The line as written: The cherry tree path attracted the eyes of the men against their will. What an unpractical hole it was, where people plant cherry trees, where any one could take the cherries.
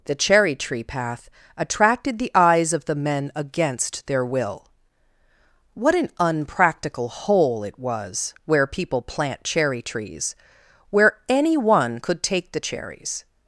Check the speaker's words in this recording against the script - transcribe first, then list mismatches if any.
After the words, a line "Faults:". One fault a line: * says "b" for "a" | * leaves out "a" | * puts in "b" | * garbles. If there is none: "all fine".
The cherry tree path attracted the eyes of the men against their will. What an unpractical hole it was, where people plant cherry trees, where any one could take the cherries.
Faults:
all fine